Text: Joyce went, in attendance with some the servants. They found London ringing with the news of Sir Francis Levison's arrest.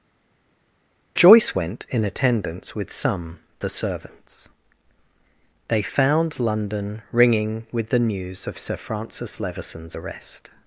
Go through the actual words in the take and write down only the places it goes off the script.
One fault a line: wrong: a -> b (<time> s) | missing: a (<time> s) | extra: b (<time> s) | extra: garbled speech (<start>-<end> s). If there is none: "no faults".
no faults